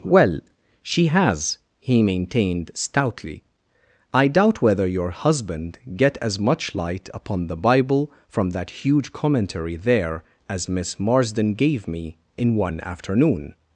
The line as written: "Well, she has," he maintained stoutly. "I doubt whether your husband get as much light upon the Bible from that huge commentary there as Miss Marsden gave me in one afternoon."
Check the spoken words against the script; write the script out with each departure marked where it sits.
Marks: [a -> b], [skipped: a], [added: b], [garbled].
"Well, she has," he maintained stoutly. "I doubt whether your husband get as much light upon the Bible from that huge commentary there as Miss Marsden gave me in one afternoon."